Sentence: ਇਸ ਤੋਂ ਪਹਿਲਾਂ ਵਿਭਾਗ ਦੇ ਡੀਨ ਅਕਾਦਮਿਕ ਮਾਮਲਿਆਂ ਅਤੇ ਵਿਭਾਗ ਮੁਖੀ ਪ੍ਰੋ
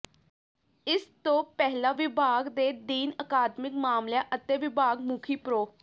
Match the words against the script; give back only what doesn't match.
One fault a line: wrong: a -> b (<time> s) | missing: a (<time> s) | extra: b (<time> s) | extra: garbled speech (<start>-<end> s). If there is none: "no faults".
no faults